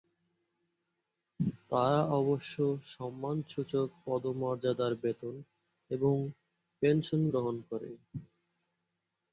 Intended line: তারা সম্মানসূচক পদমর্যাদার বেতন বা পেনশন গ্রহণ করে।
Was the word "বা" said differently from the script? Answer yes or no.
yes